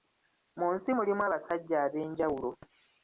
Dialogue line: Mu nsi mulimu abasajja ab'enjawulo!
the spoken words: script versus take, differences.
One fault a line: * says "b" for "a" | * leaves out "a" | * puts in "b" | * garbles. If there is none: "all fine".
all fine